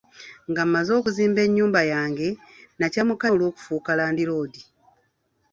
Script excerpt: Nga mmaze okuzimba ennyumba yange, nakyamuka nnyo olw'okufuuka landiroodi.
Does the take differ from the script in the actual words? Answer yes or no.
yes